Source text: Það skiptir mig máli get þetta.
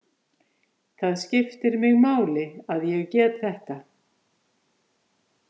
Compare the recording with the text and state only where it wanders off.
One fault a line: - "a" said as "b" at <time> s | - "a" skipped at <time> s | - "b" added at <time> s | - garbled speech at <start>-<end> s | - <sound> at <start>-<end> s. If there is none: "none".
- "að ég" added at 2.8 s